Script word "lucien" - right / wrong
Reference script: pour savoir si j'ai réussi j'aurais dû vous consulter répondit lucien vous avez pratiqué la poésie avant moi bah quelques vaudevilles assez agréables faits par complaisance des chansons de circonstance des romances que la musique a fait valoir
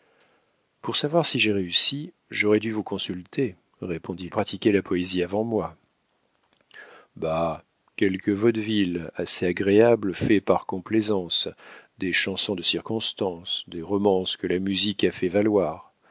wrong